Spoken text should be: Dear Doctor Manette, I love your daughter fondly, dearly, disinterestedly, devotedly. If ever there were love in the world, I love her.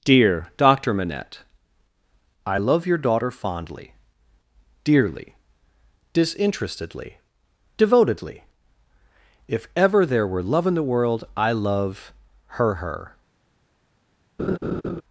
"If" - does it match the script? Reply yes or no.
yes